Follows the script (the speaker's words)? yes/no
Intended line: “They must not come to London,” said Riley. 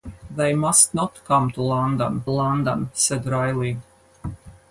no